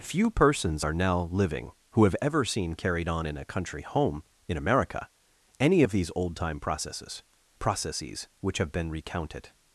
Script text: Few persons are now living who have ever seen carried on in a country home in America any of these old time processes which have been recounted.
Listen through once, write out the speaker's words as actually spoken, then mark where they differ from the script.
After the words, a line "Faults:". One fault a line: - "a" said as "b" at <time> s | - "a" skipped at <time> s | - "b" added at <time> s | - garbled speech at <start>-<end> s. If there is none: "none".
Few persons are now living who have ever seen carried on in a country home in America any of these old time processes processes which have been recounted.
Faults:
- "processes" added at 7.6 s